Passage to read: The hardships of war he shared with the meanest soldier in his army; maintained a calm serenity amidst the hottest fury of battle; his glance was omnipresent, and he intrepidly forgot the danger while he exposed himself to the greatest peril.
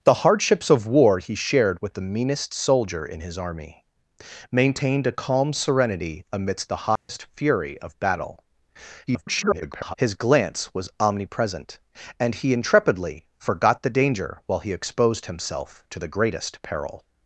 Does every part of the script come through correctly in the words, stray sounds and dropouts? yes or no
no